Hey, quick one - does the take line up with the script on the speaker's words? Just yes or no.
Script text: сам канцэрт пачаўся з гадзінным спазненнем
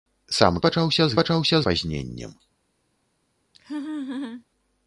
no